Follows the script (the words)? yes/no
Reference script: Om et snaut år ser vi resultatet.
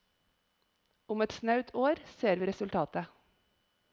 yes